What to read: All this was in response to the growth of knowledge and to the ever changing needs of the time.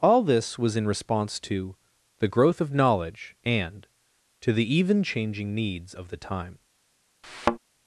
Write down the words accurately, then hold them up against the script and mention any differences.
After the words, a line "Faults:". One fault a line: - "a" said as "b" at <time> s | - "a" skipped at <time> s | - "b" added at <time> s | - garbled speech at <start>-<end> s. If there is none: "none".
All this was in response to the growth of knowledge and to the even changing needs of the time.
Faults:
- "ever" said as "even" at 4.7 s